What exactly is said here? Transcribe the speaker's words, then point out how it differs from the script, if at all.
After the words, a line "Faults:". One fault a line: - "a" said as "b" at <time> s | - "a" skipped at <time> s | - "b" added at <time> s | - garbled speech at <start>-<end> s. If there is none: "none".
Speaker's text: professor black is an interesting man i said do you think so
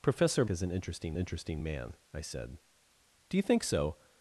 professor is an interesting interesting man i said do you think so
Faults:
- "black" skipped at 0.5 s
- "interesting" added at 1.2 s